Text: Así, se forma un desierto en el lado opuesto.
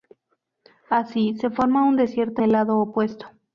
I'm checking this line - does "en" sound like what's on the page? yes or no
no